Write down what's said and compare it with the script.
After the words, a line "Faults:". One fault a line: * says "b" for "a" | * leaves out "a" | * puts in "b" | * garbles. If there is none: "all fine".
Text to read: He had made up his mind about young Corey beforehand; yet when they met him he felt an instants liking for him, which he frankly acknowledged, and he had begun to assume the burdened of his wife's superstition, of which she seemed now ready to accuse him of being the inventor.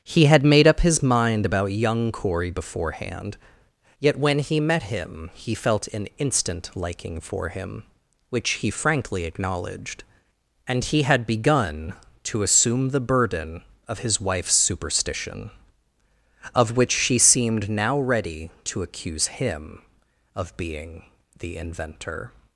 He had made up his mind about young Corey beforehand; yet when he met him he felt an instant liking for him, which he frankly acknowledged, and he had begun to assume the burden of his wife's superstition, of which she seemed now ready to accuse him of being the inventor.
Faults:
* says "he" for "they"
* says "instant" for "instants"
* says "burden" for "burdened"